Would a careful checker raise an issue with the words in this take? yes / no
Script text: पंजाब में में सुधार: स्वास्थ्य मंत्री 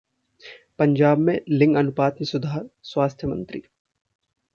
yes